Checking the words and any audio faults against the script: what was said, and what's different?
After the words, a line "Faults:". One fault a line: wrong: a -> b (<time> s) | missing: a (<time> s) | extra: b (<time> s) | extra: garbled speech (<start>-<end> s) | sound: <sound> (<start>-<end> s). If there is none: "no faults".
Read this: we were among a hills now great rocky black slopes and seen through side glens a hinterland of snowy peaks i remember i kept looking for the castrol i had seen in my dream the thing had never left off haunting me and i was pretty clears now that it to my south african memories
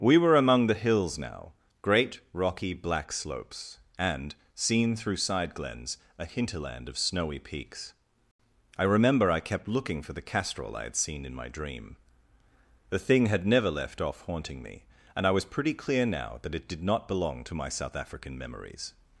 we were among the hills now great rocky black slopes and seen through side glens a hinterland of snowy peaks i remember i kept looking for the castrol i had seen in my dream the thing had never left off haunting me and i was pretty clear now that it did not belong to my south african memories
Faults:
wrong: a -> the (0.7 s)
wrong: clears -> clear (15.8 s)
extra: did not belong (16.7 s)